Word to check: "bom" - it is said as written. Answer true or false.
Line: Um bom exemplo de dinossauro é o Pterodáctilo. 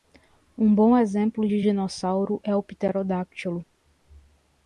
true